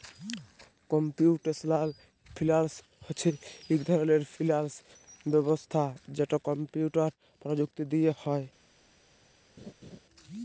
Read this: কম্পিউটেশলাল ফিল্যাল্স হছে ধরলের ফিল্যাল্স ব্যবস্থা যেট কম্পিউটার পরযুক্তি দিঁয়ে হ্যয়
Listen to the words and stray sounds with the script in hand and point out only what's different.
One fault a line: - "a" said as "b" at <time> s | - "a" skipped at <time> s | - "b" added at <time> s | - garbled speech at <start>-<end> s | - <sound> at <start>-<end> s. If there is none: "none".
- "ইক" added at 3.7 s
- laugh at 9.6-10.0 s